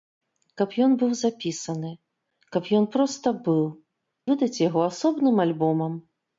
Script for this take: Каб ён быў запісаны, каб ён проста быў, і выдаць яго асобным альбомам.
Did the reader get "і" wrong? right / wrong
wrong